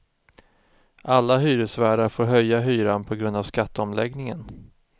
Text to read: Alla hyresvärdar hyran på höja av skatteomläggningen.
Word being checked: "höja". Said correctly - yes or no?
no